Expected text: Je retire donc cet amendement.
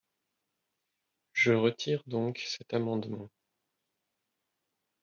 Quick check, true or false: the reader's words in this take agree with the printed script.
true